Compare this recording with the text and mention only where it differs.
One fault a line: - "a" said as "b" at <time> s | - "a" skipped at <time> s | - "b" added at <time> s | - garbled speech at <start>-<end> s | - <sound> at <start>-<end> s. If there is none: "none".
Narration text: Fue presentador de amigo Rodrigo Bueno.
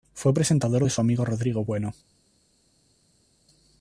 - "su" added at 0.9 s